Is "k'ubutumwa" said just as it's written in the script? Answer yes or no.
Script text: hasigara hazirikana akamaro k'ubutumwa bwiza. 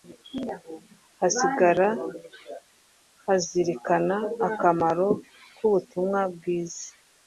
yes